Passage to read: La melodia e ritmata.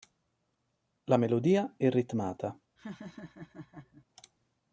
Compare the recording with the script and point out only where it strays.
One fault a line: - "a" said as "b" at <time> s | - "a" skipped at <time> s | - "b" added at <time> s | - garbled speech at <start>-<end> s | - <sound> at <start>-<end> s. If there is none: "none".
- laugh at 2.8-4.1 s